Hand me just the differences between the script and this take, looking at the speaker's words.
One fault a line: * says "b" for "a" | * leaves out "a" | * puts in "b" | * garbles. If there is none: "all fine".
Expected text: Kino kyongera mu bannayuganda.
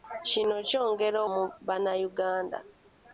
all fine